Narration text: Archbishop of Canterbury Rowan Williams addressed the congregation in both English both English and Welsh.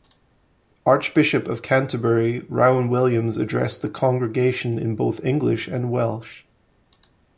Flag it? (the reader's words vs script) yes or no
yes